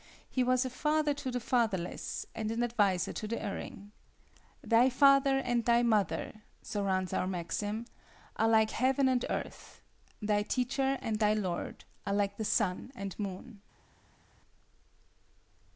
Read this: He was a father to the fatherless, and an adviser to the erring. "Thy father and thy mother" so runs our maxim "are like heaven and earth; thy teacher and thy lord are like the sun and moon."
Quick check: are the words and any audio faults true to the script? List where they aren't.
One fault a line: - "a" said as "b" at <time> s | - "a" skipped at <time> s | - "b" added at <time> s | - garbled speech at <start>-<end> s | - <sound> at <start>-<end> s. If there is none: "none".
none